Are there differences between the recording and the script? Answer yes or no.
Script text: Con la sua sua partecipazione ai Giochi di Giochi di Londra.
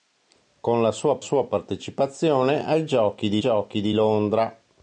no